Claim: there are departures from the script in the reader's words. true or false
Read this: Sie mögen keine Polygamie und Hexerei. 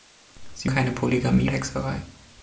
true